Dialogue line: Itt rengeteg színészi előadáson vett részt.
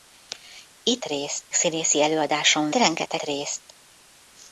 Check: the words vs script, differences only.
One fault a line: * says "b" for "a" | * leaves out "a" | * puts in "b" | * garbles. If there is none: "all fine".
* says "részt" for "rengeteg"
* says "rengeteg" for "vett"